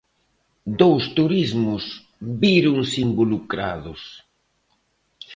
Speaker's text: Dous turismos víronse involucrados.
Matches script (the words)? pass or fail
pass